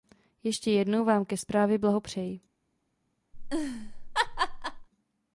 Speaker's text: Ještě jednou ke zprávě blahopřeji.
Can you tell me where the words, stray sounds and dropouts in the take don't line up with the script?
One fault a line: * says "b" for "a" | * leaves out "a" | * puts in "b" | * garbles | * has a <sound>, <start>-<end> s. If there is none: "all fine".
* puts in "vám"
* has a laugh, 3.3-4.9 s